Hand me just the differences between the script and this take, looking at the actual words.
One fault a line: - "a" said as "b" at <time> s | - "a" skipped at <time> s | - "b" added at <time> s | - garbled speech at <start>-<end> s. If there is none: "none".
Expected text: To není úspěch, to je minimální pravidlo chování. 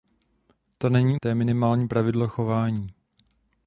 - "úspěch" skipped at 1.2 s